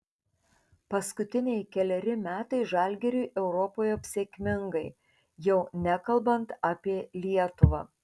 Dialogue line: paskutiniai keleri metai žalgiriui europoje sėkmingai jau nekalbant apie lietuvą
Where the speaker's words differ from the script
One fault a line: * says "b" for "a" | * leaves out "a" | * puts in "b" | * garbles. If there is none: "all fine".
all fine